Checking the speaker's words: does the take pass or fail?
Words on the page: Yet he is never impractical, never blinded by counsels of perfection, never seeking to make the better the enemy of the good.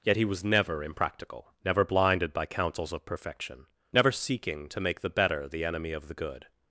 fail